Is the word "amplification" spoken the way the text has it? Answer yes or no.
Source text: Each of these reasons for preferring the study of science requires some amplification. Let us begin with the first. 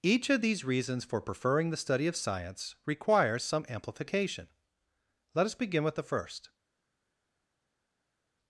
yes